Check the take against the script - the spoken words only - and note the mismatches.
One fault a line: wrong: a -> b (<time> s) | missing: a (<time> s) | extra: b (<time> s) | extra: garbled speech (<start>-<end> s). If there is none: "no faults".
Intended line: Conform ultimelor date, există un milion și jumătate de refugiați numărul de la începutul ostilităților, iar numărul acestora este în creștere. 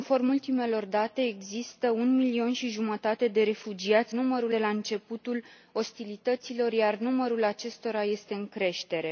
no faults